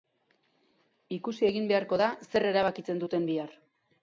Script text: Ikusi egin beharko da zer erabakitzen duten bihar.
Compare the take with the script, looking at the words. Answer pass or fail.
pass